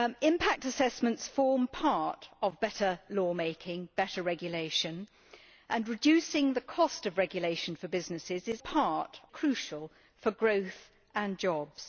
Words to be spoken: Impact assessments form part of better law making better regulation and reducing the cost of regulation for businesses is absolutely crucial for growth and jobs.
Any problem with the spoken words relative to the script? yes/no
yes